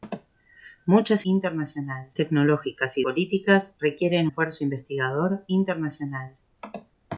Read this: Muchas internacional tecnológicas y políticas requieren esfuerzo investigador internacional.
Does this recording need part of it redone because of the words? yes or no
no